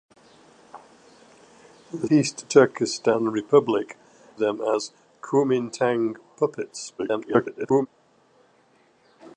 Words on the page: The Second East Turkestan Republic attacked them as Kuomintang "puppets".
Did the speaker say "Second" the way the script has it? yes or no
no